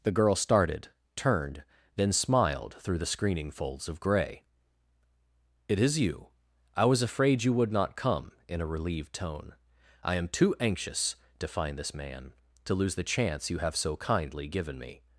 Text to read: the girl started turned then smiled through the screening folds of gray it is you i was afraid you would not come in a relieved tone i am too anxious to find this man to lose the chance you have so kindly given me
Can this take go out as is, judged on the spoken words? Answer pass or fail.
pass